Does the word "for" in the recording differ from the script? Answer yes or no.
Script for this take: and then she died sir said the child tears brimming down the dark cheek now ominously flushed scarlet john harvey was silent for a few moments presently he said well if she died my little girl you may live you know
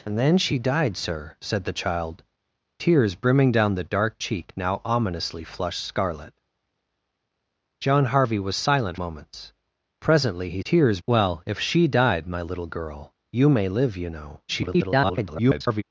yes